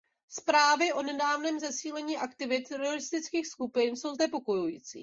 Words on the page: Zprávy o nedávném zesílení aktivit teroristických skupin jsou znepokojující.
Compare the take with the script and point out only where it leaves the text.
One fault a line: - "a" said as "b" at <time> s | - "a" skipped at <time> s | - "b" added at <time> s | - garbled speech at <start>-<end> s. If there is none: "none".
none